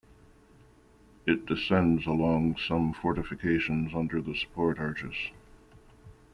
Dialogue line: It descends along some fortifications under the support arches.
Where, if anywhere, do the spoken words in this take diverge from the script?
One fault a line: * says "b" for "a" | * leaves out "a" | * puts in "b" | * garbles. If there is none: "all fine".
all fine